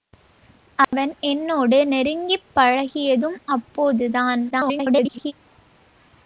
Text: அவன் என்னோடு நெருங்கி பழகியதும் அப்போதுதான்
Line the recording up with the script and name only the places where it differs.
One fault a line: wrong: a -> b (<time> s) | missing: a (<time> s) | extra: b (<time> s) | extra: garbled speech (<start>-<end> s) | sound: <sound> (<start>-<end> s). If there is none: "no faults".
sound: dropout (0.8-0.9 s)
extra: garbled speech (4.5-5.3 s)